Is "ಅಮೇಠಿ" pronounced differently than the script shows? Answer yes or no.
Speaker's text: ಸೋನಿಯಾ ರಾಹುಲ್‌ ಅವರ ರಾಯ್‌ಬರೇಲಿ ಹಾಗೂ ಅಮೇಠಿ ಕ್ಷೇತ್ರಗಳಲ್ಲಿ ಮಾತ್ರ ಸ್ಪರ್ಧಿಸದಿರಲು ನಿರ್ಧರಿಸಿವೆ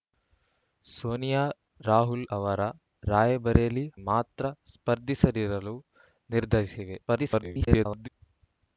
yes